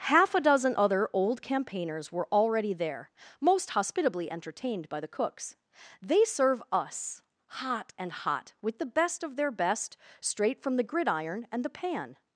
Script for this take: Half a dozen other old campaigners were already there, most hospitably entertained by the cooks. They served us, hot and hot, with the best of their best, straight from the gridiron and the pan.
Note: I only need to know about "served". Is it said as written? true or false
false